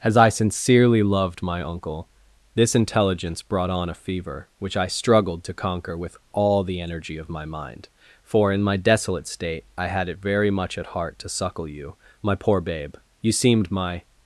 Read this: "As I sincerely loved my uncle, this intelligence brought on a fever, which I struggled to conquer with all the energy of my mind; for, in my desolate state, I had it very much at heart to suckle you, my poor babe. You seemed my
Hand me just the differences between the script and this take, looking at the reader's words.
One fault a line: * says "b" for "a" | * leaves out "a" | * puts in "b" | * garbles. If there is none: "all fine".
all fine